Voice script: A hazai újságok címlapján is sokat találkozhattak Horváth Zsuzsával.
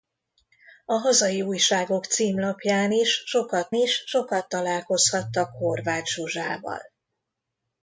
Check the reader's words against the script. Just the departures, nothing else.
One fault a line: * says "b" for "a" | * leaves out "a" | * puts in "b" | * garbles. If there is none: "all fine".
* puts in "is sokat"